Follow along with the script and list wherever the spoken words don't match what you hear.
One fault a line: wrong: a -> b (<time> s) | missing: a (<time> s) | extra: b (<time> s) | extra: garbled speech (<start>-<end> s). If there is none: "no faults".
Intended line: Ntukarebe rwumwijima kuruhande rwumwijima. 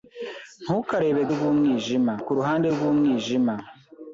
no faults